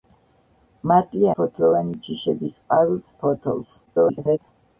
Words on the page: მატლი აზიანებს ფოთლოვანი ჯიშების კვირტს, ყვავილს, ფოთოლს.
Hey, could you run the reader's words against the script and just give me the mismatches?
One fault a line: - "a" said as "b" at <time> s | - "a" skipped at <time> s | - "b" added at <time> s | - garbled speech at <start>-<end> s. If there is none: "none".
- "აზიანებს" skipped at 1.3 s
- "კვირტს" skipped at 2.6 s
- garbled speech at 3.9-4.4 s